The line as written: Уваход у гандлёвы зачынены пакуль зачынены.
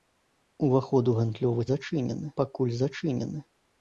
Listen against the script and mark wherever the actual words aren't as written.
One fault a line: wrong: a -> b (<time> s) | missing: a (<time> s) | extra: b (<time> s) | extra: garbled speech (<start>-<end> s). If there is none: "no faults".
no faults